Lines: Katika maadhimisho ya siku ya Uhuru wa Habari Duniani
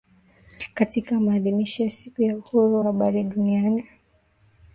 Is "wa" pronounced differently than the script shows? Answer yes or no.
yes